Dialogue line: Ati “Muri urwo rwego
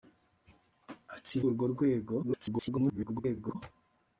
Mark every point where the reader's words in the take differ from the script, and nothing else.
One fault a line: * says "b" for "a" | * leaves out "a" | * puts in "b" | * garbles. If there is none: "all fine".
* leaves out "Muri"
* garbles